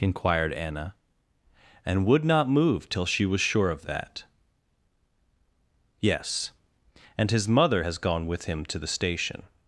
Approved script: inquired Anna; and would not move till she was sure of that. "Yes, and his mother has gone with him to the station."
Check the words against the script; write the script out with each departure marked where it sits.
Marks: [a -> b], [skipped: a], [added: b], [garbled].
inquired Anna; and would not move till she was sure of that. "Yes, and his mother has gone with him to the station."